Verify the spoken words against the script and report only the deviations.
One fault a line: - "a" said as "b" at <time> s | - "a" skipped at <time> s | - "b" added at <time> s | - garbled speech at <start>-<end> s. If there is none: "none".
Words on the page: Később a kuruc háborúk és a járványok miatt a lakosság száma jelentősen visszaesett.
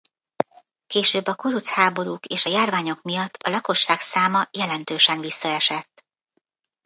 none